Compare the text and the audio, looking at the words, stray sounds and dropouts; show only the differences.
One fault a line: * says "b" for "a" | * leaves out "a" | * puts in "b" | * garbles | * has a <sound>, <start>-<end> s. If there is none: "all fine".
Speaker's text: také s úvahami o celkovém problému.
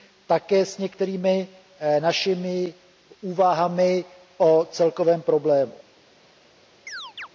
* puts in "některými našimi"
* has a chirp, 6.9-7.3 s